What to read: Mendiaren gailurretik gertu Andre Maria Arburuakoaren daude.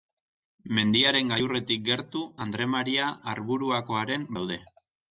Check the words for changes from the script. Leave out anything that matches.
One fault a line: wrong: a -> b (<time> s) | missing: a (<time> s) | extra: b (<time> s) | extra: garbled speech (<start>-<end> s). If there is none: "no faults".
no faults